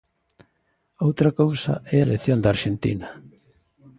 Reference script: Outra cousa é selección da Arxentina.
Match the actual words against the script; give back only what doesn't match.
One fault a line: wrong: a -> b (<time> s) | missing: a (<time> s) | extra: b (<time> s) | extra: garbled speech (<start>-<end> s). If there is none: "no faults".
no faults